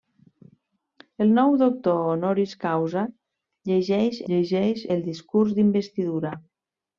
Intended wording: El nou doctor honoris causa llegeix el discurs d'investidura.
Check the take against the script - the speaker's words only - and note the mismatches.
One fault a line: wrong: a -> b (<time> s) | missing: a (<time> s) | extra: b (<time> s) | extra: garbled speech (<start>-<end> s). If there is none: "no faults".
extra: llegeix (4.3 s)